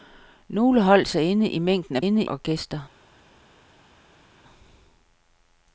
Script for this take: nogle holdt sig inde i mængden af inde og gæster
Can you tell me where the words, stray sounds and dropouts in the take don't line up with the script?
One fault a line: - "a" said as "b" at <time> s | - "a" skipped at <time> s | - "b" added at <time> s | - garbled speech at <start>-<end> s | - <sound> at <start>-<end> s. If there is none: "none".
none